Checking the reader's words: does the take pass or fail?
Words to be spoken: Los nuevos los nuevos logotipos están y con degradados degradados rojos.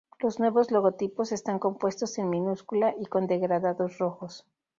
fail